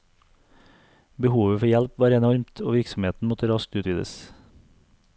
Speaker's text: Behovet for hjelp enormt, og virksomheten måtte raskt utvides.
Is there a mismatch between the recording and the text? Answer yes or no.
yes